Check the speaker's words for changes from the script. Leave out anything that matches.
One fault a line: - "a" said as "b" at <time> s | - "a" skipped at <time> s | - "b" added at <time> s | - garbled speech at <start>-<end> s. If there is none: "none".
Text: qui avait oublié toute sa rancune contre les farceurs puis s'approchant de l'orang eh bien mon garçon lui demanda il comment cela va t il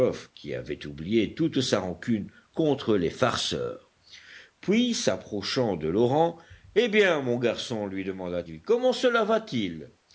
none